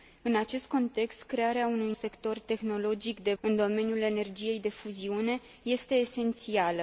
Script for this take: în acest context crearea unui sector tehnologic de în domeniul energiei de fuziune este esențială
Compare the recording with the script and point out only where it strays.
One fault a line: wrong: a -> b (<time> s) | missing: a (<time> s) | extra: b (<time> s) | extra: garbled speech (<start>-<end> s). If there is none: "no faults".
no faults